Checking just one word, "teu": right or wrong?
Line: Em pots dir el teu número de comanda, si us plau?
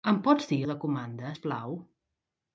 wrong